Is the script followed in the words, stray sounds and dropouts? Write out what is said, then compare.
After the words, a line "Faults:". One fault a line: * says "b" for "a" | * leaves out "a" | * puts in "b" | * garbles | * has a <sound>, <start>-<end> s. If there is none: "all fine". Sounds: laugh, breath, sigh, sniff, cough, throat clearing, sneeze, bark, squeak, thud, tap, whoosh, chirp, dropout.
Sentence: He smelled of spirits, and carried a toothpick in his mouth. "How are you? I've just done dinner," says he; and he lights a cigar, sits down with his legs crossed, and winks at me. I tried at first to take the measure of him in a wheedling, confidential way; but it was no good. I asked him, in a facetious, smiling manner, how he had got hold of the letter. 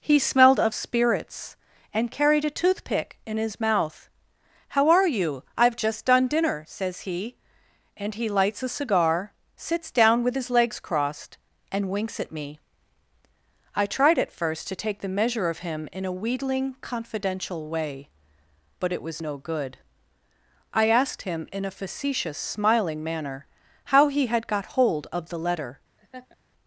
He smelled of spirits, and carried a toothpick in his mouth. "How are you? I've just done dinner," says he; and he lights a cigar, sits down with his legs crossed, and winks at me. I tried at first to take the measure of him in a wheedling, confidential way; but it was no good. I asked him, in a facetious, smiling manner, how he had got hold of the letter.
Faults:
* has a laugh, 26.0-26.4 s